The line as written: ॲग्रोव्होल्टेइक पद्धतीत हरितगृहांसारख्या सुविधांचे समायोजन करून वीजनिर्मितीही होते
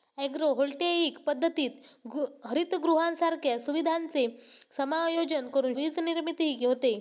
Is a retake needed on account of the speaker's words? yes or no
no